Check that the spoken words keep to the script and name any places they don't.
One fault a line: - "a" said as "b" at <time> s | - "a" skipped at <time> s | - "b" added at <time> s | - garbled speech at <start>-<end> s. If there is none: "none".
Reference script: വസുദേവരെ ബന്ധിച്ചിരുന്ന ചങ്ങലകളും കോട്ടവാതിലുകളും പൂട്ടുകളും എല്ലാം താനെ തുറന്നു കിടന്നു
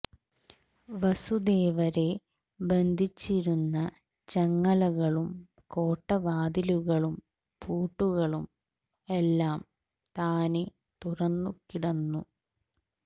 none